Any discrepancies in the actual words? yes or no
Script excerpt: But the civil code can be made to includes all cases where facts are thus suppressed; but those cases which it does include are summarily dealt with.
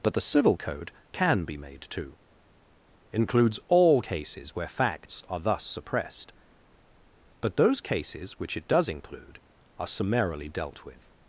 no